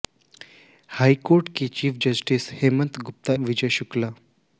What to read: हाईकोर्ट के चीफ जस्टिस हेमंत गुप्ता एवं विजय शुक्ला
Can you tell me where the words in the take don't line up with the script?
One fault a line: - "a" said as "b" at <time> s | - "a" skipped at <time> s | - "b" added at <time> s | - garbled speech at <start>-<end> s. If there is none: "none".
- "एवं" skipped at 3.3 s